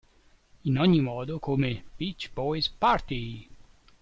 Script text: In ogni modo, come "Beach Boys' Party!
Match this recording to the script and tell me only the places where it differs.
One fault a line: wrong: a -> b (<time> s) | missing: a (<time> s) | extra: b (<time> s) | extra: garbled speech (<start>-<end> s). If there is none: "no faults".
no faults